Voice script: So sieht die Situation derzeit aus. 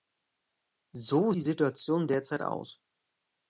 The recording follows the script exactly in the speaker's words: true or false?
false